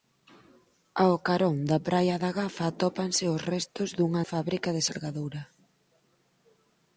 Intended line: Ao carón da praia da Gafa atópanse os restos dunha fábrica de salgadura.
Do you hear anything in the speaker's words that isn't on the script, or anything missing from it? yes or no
no